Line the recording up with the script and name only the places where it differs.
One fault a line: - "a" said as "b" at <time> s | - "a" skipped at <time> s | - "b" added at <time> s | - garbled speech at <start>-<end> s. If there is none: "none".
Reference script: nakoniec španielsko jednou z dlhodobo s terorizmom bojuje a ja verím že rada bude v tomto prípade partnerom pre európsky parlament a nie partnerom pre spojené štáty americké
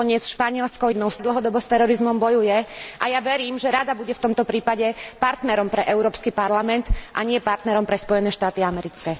none